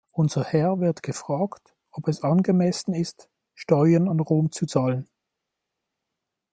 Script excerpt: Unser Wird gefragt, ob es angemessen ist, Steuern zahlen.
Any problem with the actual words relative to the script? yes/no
yes